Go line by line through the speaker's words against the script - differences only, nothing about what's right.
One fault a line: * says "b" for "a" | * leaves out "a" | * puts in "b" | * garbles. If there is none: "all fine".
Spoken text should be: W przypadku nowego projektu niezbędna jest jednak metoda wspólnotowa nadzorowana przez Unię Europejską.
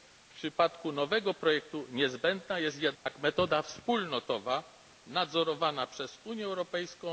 all fine